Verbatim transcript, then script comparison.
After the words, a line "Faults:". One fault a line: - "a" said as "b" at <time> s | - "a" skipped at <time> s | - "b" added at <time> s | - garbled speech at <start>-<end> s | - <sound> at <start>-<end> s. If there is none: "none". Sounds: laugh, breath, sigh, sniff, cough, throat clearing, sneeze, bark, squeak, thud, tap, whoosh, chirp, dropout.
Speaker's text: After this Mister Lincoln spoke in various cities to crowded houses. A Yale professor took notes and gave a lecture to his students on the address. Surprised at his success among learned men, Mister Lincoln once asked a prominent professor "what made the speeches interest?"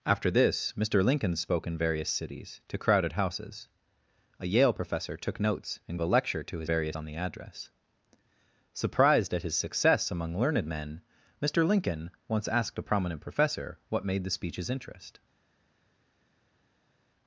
After this Mister Lincoln spoke in various cities to crowded houses. A Yale professor took notes and a lecture to his various on the address. Surprised at his success among learned men, Mister Lincoln once asked a prominent professor "what made the speeches interest?"
Faults:
- "gave" skipped at 6.0 s
- "students" said as "various" at 6.7 s